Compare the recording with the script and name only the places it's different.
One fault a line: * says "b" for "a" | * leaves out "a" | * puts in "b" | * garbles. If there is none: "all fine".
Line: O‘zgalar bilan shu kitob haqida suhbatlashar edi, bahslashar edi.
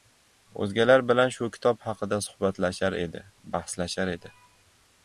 all fine